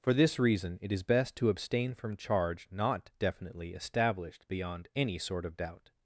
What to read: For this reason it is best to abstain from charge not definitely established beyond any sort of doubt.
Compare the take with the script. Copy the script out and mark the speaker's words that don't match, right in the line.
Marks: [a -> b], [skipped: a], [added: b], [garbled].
For this reason it is best to abstain from charge not definitely established beyond any sort of doubt.